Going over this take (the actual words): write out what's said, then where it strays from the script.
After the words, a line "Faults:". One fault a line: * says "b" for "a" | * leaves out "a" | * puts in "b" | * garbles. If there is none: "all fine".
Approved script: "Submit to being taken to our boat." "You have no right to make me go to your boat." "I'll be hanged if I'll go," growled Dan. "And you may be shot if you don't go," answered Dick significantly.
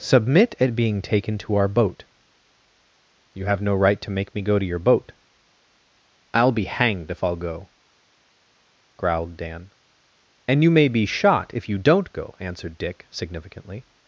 "Submit at being taken to our boat." "You have no right to make me go to your boat." "I'll be hanged if I'll go," growled Dan. "And you may be shot if you don't go," answered Dick significantly.
Faults:
* says "at" for "to"